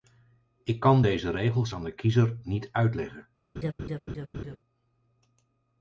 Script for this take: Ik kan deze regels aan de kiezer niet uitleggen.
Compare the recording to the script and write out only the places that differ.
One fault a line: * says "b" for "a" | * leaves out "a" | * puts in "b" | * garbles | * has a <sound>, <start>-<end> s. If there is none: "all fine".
* has a laugh, 3.6-4.6 s